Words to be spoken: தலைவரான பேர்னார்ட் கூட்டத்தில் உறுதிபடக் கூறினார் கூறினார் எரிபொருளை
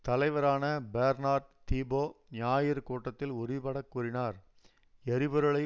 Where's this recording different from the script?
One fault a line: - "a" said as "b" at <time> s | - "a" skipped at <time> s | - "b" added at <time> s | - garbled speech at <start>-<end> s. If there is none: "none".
- "தீபோ ஞாயிறு" added at 1.7 s
- "கூறினார்" skipped at 4.4 s